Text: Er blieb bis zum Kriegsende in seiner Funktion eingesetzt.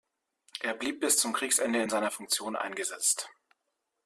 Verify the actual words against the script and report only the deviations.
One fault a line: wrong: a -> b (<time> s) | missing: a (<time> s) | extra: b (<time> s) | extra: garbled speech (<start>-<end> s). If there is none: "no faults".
no faults